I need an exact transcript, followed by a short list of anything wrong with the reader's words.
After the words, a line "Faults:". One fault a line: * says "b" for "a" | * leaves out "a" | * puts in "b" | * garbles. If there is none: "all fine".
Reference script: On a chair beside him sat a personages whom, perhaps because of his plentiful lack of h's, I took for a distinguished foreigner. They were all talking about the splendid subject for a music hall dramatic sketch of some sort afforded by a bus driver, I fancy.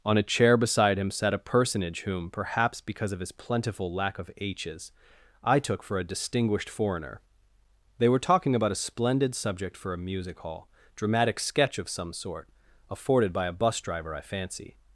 On a chair beside him sat a personage whom, perhaps because of his plentiful lack of h's, I took for a distinguished foreigner. They were talking about a splendid subject for a music hall dramatic sketch of some sort afforded by a bus driver, I fancy.
Faults:
* says "personage" for "personages"
* leaves out "all"
* says "a" for "the"